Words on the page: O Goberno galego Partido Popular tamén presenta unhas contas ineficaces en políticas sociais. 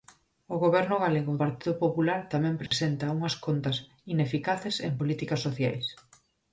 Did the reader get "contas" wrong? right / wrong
right